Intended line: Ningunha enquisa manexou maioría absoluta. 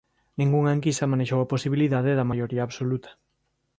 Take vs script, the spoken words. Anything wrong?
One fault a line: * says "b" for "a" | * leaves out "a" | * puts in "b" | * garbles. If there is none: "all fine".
* puts in "a posibilidade da"